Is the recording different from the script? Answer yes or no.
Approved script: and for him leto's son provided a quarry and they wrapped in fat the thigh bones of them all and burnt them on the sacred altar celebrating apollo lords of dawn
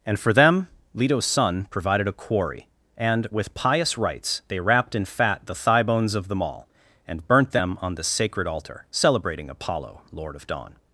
yes